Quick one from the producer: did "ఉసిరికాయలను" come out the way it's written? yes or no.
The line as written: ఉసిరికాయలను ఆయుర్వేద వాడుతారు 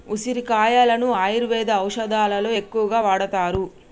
yes